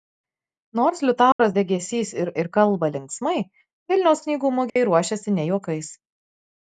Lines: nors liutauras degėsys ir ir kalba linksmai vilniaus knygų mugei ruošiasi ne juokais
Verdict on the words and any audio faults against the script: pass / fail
fail